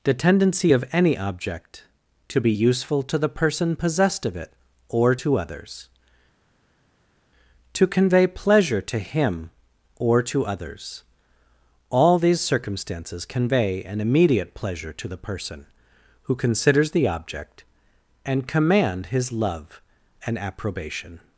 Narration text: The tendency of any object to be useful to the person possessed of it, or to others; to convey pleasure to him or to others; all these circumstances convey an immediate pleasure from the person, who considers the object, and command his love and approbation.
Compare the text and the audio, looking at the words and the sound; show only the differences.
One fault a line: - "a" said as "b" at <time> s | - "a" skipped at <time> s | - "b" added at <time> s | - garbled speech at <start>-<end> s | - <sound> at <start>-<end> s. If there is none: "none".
- "from" said as "to" at 14.9 s